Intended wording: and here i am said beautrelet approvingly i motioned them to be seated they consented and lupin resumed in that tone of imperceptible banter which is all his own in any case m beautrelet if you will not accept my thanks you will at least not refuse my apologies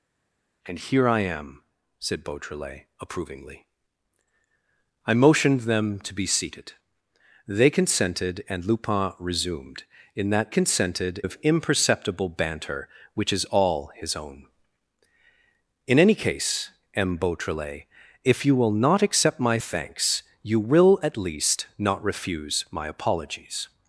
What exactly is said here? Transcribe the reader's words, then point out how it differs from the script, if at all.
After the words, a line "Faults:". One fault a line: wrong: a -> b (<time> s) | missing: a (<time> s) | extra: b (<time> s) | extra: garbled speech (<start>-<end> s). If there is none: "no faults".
and here i am said beautrelet approvingly i motioned them to be seated they consented and lupin resumed in that consented of imperceptible banter which is all his own in any case m beautrelet if you will not accept my thanks you will at least not refuse my apologies
Faults:
wrong: tone -> consented (10.5 s)